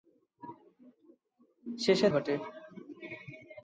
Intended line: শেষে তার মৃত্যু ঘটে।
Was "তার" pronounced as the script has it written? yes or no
no